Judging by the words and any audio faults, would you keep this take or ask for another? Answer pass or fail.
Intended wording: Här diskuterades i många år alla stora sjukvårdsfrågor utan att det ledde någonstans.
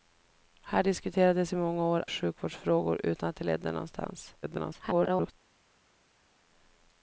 fail